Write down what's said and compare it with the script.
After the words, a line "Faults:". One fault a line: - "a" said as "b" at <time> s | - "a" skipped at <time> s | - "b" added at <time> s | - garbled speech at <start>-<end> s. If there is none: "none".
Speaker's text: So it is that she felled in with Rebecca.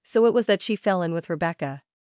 So it was that she fell in with Rebecca.
Faults:
- "is" said as "was" at 0.3 s
- "felled" said as "fell" at 0.8 s